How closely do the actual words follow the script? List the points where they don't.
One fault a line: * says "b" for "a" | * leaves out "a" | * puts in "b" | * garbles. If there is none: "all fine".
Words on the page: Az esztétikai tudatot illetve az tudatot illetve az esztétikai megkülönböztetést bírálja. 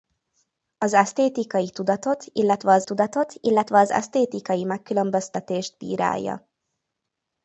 all fine